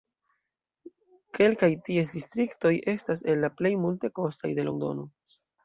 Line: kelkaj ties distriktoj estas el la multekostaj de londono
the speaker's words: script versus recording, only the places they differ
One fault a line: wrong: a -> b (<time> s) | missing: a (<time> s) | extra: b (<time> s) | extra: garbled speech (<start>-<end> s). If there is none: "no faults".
extra: plej (3.6 s)